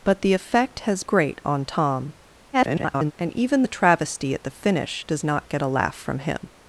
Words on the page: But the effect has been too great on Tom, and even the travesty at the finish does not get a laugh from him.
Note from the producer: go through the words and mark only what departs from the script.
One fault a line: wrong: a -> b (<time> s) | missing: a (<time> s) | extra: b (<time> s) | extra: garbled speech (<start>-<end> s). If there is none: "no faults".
missing: been too (1.0 s)
extra: garbled speech (2.5-3.1 s)